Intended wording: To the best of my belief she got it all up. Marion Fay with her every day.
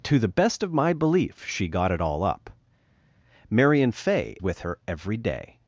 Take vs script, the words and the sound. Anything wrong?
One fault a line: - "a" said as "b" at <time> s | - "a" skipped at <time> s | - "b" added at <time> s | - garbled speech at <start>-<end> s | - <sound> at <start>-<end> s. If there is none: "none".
none